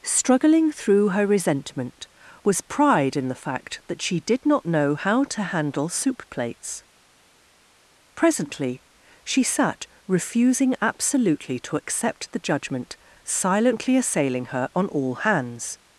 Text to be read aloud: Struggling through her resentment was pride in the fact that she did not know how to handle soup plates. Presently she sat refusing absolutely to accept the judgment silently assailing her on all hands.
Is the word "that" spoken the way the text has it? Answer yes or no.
yes